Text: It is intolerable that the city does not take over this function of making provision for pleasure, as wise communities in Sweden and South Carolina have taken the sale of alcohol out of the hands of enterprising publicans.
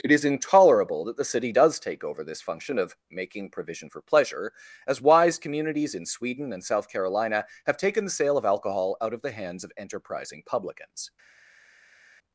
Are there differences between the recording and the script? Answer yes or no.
yes